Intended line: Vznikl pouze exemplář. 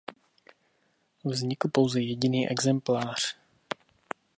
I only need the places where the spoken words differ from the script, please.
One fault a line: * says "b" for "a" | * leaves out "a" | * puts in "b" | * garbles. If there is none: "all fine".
* puts in "jediný"